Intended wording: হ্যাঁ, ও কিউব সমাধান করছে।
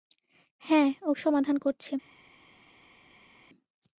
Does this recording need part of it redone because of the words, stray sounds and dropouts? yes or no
yes